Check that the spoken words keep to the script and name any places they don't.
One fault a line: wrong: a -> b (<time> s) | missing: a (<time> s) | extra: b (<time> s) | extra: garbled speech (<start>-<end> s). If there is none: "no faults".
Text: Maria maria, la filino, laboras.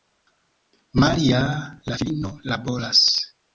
missing: maria (1.8 s)